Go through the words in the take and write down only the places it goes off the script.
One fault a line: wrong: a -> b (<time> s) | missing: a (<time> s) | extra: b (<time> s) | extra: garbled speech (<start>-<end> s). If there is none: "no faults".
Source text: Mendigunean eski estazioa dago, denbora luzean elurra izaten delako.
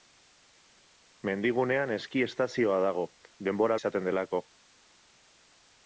missing: luzean elurra (3.8 s)